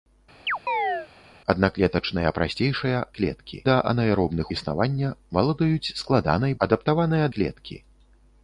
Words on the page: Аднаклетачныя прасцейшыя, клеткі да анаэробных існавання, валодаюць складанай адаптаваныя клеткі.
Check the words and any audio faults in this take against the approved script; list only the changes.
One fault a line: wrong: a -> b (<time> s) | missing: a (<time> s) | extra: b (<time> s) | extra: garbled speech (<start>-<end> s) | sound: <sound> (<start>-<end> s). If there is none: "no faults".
sound: chirp (0.5-1.1 s)